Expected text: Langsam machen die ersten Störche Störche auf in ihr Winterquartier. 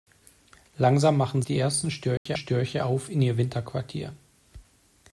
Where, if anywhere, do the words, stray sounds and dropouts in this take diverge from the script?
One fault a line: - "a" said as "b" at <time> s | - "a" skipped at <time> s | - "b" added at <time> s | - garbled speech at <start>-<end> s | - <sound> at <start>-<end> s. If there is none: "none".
- dropout at 2.2-2.3 s